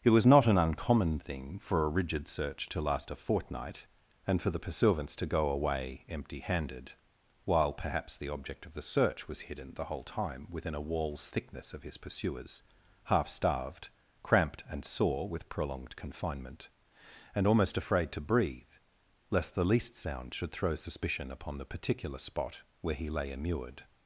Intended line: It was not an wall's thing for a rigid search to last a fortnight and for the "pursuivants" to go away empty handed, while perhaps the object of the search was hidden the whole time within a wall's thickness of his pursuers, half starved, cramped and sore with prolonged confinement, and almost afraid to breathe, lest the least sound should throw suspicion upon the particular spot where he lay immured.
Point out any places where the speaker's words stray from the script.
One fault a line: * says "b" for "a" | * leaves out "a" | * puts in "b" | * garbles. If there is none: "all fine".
* says "uncommon" for "wall's"